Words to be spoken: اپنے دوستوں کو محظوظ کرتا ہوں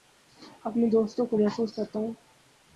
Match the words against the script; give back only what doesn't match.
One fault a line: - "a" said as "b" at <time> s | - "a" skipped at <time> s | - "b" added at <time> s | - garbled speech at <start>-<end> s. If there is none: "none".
none